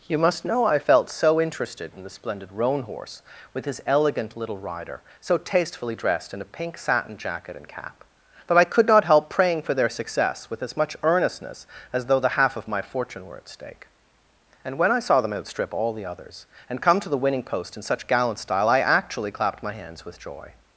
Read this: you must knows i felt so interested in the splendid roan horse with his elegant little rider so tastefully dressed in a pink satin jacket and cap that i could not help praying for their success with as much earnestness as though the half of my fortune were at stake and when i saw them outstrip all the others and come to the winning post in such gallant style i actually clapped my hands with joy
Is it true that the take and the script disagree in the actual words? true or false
true